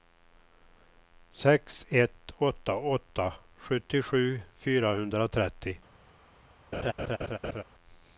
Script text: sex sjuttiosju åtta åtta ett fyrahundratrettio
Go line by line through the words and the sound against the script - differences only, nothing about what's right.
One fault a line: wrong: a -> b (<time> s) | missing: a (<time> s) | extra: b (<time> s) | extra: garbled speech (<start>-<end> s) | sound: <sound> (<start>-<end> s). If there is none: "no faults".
wrong: sjuttiosju -> ett (1.9 s)
wrong: ett -> sjuttiosju (3.6 s)
sound: laugh (6.7-7.6 s)